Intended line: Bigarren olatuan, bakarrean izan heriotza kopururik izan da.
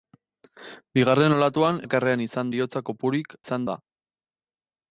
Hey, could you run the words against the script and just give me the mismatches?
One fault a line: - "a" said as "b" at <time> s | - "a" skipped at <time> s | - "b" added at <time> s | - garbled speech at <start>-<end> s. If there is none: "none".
none